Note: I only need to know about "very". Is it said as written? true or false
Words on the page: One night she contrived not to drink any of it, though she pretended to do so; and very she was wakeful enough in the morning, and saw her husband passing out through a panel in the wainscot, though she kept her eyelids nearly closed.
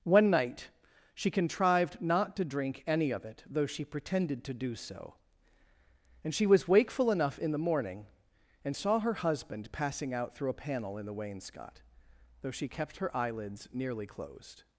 false